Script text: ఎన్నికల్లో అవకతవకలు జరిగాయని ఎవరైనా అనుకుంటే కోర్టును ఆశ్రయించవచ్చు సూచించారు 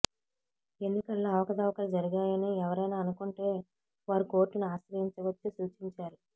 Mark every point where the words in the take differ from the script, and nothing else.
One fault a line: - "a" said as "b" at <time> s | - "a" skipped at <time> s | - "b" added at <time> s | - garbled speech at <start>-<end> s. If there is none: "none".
- "వారు" added at 4.1 s